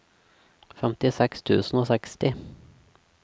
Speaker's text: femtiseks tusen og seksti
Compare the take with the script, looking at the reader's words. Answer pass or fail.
pass